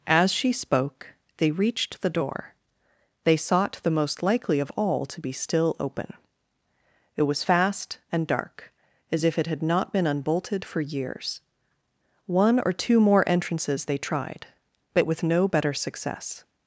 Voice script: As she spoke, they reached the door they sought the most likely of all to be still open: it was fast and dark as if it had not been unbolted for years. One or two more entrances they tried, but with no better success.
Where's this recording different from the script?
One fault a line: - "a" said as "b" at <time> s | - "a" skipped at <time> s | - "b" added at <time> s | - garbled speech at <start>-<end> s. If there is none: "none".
none